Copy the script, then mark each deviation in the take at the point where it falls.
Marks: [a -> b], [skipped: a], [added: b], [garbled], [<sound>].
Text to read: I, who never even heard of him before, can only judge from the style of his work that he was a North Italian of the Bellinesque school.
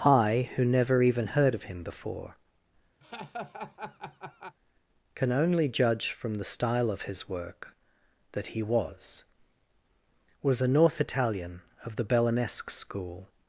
I, who never even heard of him before, [laugh] can only judge from the style of his work that he was [added: was] a North Italian of the Bellinesque school.